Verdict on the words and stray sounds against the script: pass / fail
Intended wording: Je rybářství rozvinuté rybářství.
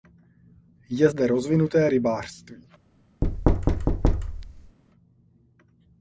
fail